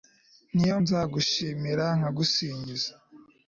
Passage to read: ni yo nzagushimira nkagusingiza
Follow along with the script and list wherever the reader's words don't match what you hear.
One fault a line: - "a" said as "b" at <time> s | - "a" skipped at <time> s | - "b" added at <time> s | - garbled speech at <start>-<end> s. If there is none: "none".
none